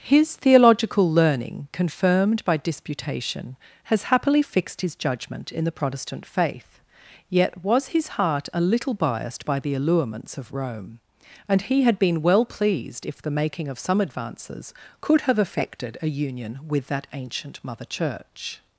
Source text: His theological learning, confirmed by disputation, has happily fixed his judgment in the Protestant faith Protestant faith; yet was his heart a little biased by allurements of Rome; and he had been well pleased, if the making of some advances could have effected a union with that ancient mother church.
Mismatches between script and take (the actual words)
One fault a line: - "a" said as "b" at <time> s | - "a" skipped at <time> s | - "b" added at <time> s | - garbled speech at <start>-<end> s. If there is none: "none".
- "Protestant faith" skipped at 6.8 s
- "the" added at 9.6 s